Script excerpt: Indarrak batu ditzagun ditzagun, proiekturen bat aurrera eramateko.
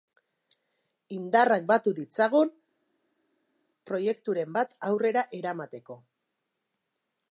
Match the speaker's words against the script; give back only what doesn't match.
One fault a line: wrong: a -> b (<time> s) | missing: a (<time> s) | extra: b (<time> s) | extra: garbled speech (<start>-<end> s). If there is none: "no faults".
missing: ditzagun (2.5 s)